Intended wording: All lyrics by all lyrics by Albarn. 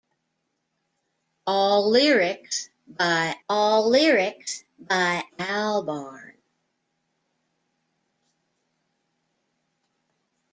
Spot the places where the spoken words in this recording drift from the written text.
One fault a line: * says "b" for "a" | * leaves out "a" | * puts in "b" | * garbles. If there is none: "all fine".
all fine